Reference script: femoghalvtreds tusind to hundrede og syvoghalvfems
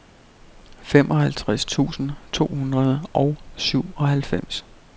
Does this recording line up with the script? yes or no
yes